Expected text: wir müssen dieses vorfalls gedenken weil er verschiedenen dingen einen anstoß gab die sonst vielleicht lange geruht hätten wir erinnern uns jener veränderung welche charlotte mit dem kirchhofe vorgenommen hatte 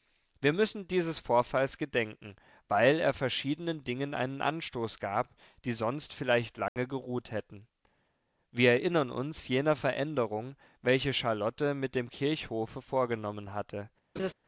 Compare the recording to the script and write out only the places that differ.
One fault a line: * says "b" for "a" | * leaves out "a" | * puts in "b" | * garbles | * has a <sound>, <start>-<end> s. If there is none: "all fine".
* has a dropout, 6.7-6.8 s
* has a laugh, 14.2-14.3 s